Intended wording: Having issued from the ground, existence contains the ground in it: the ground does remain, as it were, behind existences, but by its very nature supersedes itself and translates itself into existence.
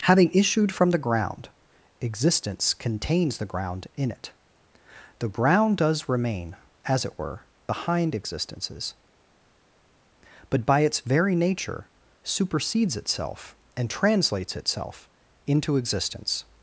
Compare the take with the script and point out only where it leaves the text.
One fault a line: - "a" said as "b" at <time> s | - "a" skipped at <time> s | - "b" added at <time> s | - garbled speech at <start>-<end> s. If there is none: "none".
none